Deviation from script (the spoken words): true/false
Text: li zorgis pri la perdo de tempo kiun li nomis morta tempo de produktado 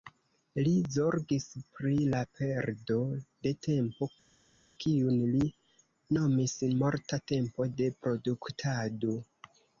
false